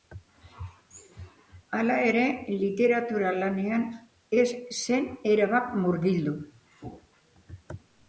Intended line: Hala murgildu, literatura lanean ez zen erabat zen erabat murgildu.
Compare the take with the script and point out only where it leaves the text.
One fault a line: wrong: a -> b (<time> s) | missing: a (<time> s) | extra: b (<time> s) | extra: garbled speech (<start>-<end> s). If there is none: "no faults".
wrong: murgildu -> ere (2.1 s)
missing: zen erabat (5.8 s)